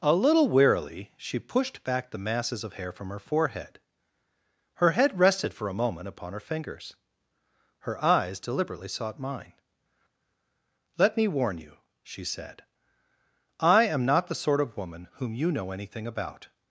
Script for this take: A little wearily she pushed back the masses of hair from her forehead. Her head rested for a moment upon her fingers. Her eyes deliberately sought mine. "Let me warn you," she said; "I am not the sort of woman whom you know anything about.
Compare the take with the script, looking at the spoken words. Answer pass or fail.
pass